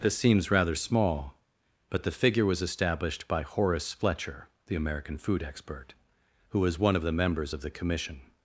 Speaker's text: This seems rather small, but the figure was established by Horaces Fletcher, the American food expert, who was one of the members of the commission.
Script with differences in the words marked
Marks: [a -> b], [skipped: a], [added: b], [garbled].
This seems rather small, but the figure was established by [Horaces -> Horace] Fletcher, the American food expert, who was one of the members of the commission.